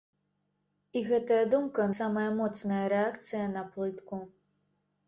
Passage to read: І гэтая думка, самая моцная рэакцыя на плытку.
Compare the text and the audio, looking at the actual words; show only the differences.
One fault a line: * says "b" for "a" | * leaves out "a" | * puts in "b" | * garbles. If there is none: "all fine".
all fine